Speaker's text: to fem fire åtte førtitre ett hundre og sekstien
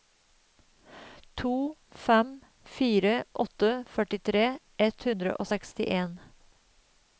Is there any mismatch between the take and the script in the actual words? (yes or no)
no